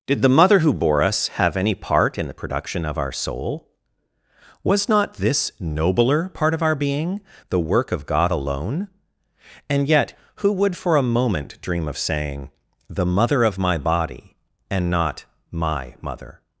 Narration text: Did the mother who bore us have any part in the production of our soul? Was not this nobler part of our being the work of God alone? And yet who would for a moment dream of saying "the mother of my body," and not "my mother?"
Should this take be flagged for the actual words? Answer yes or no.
no